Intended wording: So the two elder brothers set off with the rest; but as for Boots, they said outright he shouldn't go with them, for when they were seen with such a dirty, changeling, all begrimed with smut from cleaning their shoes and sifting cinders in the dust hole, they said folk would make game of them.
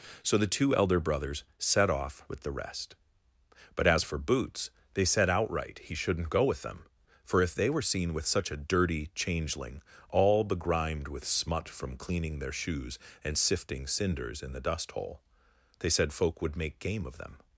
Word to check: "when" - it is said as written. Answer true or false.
false